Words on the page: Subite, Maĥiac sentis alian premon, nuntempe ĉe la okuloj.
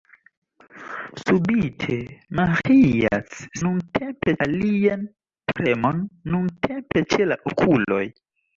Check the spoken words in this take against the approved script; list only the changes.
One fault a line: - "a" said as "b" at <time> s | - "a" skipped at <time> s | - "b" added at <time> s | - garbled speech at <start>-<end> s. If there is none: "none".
- "sentis" said as "nuntempe" at 3.7 s